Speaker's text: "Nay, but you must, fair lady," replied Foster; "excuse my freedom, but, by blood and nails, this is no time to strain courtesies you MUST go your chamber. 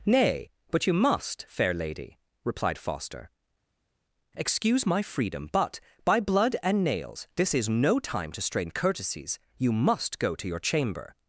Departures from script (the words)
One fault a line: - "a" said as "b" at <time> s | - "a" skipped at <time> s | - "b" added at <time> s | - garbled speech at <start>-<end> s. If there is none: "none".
- "to" added at 10.3 s